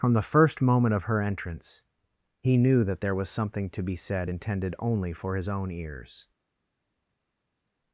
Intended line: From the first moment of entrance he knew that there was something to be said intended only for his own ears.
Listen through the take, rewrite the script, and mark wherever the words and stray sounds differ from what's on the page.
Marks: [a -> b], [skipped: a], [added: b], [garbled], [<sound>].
From the first moment of [added: her] entrance he knew that there was something to be said intended only for his own ears.